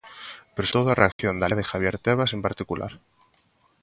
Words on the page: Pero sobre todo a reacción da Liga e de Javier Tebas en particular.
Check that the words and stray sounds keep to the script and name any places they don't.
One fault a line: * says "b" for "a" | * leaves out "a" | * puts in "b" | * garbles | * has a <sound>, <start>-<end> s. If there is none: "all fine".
* leaves out "sobre"
* has a dropout, 1.1-1.2 s
* leaves out "Liga"